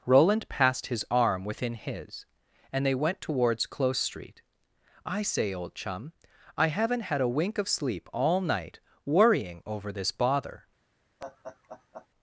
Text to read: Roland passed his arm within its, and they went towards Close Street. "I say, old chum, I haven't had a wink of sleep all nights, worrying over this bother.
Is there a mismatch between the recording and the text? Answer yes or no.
yes